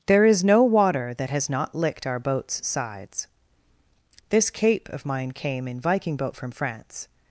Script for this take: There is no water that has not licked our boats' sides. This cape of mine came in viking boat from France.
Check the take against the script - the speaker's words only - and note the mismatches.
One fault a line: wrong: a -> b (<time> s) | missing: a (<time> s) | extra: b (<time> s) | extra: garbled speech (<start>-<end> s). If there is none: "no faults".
no faults